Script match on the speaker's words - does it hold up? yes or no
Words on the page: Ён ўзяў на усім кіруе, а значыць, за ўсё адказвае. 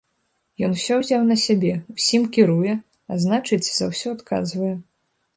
no